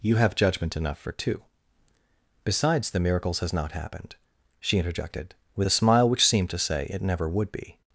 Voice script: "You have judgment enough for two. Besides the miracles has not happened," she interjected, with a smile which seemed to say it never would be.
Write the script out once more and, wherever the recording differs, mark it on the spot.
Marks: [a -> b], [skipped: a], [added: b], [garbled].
"You have judgment enough for two. Besides the miracles has not happened," she interjected, with a smile which seemed to say it never would be.